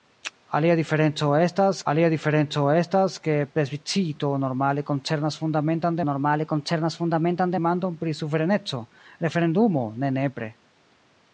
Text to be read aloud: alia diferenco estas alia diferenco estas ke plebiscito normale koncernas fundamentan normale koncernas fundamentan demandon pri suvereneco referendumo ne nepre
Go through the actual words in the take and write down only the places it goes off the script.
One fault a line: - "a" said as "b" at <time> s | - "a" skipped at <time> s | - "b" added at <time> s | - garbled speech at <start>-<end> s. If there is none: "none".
none